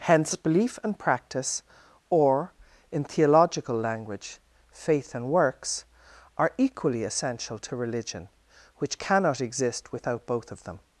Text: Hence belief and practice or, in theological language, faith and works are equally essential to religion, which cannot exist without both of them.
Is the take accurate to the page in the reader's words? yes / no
yes